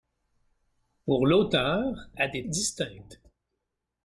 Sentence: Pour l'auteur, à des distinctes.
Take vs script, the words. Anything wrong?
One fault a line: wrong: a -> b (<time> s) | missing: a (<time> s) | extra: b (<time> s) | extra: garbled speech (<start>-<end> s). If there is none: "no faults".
no faults